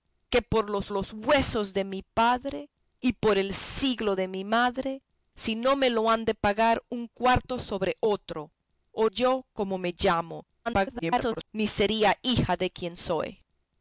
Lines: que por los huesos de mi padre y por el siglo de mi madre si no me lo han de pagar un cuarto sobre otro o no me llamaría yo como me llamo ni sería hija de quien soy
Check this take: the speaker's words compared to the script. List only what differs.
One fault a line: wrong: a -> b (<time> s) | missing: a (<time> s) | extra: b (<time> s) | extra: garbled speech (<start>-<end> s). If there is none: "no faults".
extra: los (0.9 s)
missing: no me llamaría (9.1 s)
extra: garbled speech (10.7-11.5 s)